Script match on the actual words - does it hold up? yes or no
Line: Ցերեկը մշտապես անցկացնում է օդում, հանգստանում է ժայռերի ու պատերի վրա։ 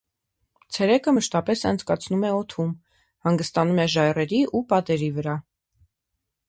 yes